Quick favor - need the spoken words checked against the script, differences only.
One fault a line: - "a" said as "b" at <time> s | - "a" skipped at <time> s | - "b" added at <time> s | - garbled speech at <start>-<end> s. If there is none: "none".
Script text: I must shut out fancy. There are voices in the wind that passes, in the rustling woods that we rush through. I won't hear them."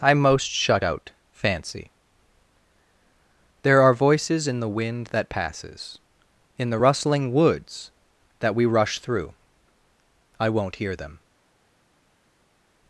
- "must" said as "most" at 0.1 s